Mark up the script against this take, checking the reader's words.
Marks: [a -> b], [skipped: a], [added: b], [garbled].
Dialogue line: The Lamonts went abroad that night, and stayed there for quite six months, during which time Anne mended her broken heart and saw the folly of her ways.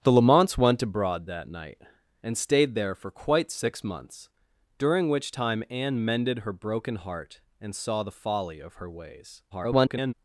The Lamonts went abroad that night, and stayed there for quite six months, during which time Anne mended her broken heart and saw the folly of her ways. [garbled]